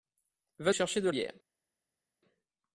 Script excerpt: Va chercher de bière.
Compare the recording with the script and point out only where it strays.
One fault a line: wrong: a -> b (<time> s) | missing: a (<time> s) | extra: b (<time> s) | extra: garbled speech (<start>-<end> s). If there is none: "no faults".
no faults